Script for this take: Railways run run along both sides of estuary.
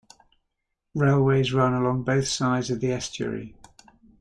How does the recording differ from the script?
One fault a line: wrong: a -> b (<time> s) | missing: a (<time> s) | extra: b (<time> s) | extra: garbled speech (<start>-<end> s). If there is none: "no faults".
missing: run (1.8 s)
extra: the (2.8 s)